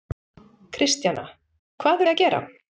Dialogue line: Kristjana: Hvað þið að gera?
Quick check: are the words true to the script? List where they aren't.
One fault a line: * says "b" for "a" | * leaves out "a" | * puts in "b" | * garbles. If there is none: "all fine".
all fine